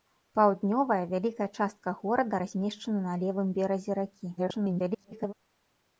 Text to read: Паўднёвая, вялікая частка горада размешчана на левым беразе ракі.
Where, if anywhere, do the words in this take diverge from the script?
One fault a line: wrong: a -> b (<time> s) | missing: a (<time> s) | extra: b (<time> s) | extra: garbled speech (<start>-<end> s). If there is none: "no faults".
extra: garbled speech (4.4-5.3 s)